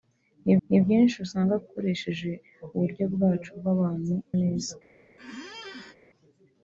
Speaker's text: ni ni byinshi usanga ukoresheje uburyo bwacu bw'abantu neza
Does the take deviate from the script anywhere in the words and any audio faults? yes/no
yes